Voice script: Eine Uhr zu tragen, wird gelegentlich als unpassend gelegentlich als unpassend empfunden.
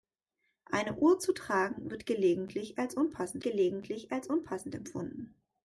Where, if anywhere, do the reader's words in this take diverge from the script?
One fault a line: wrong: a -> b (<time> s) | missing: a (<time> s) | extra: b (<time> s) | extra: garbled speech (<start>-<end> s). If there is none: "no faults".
no faults